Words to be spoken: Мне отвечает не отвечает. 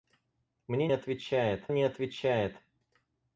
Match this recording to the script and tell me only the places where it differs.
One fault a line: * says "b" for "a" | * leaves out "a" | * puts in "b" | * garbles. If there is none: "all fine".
all fine